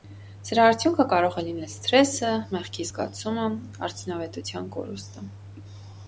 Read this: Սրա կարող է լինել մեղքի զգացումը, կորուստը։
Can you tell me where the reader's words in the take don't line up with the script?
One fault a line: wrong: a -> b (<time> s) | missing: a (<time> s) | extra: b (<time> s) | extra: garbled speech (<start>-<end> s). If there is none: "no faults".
extra: արդյունքը (0.7 s)
extra: սթրեսը (1.7 s)
extra: արդյունավետության (3.9 s)